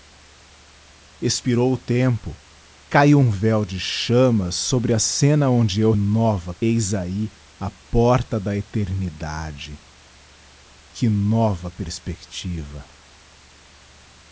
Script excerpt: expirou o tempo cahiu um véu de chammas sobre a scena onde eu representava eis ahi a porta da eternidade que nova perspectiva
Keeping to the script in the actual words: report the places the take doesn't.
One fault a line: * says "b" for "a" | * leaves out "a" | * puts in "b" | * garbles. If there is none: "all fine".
* says "nova" for "representava"